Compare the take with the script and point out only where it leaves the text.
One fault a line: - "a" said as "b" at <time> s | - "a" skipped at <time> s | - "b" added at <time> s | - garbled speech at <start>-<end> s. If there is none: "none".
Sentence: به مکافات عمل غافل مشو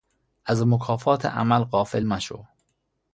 - "به" said as "از" at 0.5 s